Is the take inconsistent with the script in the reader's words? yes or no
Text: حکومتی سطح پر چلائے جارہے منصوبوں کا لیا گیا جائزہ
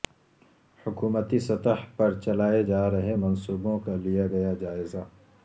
no